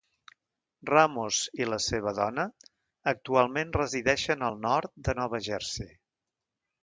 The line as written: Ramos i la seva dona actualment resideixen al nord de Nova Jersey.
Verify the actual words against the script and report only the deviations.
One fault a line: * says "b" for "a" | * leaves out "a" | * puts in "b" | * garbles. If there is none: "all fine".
all fine